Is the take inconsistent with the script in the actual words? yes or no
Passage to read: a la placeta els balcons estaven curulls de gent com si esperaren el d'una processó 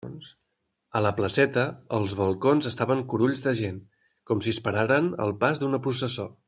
yes